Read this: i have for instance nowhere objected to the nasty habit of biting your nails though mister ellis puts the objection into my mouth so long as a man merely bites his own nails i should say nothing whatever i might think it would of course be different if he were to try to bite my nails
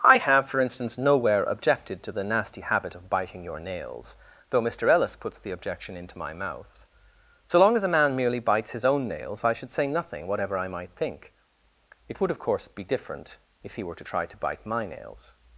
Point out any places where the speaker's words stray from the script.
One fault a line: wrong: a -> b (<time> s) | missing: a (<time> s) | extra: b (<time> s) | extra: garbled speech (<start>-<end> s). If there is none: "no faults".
no faults